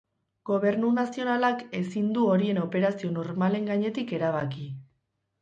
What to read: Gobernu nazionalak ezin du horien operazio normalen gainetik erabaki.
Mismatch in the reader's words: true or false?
false